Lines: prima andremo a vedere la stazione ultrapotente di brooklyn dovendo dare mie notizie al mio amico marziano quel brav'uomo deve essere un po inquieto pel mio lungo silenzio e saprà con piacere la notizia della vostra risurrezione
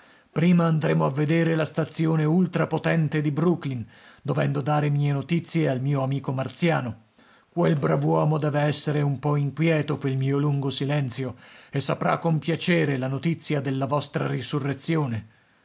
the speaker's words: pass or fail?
pass